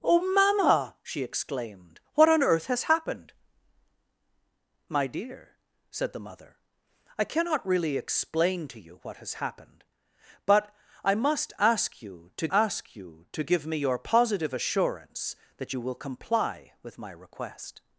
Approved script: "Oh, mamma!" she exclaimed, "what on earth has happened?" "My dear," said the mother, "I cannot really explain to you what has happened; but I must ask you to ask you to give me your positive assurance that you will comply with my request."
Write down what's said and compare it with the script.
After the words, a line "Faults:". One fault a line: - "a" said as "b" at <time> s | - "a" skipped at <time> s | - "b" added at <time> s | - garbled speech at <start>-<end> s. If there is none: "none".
"Oh, mamma!" she exclaimed, "what on earth has happened?" "My dear," said the mother, "I cannot really explain to you what has happened; but I must ask you to ask you to give me your positive assurance that you will comply with my request."
Faults:
none